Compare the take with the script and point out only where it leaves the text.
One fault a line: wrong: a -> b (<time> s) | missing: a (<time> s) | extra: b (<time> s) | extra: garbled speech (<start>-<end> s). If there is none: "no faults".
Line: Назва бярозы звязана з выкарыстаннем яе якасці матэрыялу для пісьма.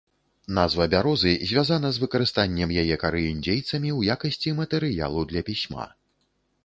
extra: кары індзейцамі ў (3.0 s)